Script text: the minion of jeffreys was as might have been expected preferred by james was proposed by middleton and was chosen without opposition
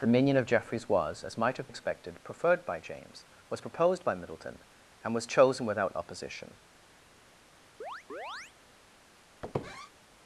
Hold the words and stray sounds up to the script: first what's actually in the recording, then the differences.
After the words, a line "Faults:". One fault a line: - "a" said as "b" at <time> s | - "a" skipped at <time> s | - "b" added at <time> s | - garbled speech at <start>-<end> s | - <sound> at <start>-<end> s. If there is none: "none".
the minion of jeffreys was as might have expected preferred by james was proposed by middleton and was chosen without opposition
Faults:
- "been" skipped at 1.7 s
- chirp at 7.8-8.5 s
- squeak at 9.4-9.9 s